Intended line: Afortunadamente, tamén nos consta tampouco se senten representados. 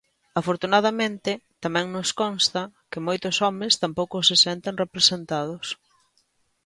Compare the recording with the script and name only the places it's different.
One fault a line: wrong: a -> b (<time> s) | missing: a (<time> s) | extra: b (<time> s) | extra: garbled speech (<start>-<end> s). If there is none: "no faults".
extra: que moitos homes (2.9 s)